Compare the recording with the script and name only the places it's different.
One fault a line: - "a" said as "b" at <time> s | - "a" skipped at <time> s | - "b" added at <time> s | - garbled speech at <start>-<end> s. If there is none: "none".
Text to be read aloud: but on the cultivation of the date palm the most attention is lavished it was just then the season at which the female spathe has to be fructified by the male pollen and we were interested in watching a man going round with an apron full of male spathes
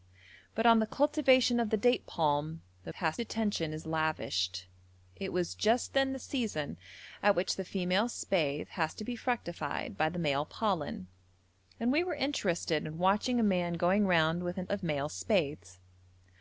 - "most" said as "has" at 2.9 s
- "apron full" skipped at 14.7 s